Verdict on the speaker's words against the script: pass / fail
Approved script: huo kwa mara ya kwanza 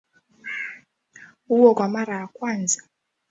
pass